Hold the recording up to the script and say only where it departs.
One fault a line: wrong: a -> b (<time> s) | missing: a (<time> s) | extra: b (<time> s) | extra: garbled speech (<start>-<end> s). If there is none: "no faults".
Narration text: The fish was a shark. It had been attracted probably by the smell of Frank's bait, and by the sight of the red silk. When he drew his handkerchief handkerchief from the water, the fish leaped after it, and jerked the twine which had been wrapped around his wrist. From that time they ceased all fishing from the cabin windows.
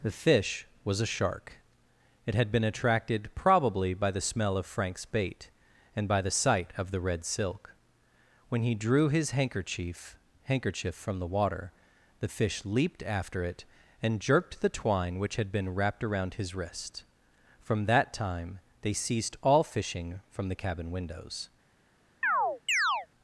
no faults